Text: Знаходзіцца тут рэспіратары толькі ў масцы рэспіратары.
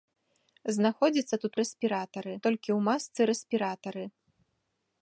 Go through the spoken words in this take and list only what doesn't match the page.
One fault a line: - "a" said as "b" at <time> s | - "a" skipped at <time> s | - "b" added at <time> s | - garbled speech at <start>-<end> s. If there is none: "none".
none